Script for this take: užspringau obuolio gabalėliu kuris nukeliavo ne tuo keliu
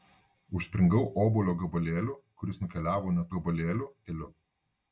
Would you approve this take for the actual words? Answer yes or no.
no